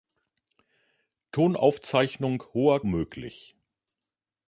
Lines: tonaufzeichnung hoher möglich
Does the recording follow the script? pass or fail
pass